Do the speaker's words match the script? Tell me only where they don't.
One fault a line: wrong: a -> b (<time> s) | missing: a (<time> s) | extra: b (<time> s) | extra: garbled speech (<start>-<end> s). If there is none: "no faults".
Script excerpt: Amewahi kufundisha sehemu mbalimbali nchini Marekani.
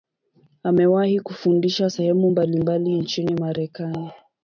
no faults